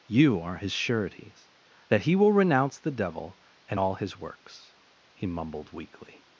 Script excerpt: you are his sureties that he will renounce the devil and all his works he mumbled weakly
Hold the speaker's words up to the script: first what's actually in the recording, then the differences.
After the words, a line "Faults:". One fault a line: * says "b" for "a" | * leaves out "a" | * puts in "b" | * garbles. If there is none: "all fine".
you are his sureties that he will renounce the devil and all his works he mumbled weakly
Faults:
all fine